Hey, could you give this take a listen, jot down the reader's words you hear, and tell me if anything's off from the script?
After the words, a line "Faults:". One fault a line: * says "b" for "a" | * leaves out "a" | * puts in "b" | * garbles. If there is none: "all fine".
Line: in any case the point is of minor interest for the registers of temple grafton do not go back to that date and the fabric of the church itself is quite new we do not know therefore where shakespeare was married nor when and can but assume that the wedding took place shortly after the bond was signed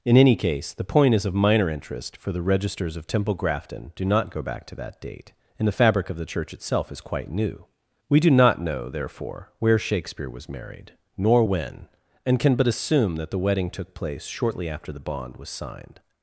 in any case the point is of minor interest for the registers of temple grafton do not go back to that date and the fabric of the church itself is quite new we do not know therefore where shakespeare was married nor when and can but assume that the wedding took place shortly after the bond was signed
Faults:
all fine